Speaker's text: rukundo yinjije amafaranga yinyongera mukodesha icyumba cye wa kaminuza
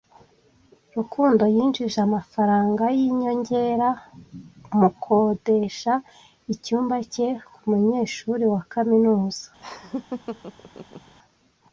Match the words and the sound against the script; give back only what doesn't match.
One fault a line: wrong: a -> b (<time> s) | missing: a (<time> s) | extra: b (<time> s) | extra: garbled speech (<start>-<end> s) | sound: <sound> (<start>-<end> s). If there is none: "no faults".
extra: kumunyeshuri (7.5 s)
sound: laugh (9.6-11.1 s)